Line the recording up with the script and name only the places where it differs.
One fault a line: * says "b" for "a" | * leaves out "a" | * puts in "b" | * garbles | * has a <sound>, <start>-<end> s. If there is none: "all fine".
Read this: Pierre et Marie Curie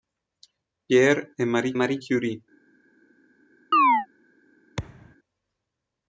* puts in "Marie"
* has a chirp, 3.7-4.1 s
* has a thud, 4.8-5.2 s